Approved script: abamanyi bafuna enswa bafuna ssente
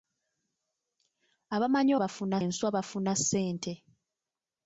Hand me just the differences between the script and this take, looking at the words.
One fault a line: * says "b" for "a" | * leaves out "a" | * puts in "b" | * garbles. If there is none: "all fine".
all fine